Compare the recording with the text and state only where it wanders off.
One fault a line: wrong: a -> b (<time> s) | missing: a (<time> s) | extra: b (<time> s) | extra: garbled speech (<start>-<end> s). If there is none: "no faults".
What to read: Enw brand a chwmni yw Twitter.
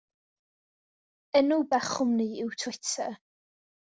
missing: brand (1.6 s)